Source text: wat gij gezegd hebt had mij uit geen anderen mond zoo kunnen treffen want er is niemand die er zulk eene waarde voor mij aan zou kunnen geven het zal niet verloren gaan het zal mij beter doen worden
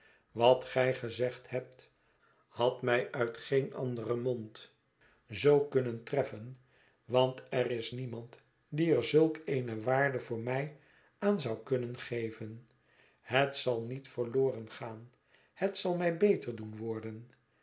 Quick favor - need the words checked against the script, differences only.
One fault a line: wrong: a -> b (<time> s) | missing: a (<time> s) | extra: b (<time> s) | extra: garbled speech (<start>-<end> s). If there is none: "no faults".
no faults